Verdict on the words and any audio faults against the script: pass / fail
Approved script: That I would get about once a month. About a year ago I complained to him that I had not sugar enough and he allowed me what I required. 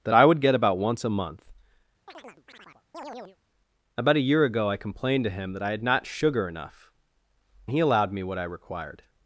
fail